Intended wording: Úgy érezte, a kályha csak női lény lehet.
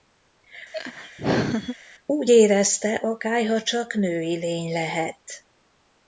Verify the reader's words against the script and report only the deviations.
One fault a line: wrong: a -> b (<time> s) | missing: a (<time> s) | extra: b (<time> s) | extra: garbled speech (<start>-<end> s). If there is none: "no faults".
no faults